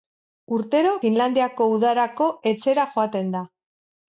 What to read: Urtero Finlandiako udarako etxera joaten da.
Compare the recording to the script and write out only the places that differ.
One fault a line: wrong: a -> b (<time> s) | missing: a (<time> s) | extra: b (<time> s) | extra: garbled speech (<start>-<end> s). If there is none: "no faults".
no faults